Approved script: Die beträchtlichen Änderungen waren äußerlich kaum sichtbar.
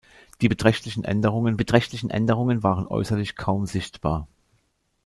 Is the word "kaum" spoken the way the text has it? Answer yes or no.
yes